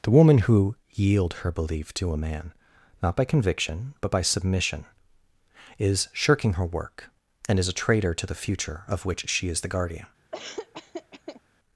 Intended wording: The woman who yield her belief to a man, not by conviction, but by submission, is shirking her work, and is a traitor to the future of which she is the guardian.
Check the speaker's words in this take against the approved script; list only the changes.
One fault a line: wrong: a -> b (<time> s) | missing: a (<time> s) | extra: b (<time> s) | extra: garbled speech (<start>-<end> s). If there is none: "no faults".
no faults